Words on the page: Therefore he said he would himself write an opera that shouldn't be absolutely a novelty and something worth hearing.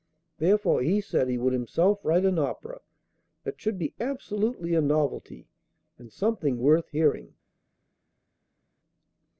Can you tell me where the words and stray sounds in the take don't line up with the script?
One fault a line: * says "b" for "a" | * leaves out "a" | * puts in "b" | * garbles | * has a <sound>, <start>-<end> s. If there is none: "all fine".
* says "should" for "shouldn't"